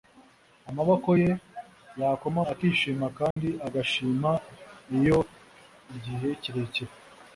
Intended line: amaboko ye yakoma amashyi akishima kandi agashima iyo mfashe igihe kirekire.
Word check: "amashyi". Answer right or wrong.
wrong